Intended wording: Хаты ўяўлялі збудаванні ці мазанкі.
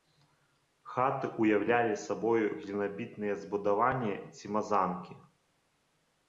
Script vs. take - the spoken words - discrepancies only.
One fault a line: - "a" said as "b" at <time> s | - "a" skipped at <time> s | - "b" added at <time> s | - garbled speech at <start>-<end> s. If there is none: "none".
- "сабою глінабітныя" added at 2.0 s